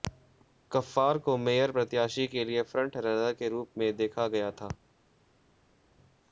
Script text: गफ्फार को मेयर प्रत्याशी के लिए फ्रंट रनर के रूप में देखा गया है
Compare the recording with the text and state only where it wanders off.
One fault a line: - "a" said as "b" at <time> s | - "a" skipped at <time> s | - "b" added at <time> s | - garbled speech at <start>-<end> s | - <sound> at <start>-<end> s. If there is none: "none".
- "है" said as "था" at 4.5 s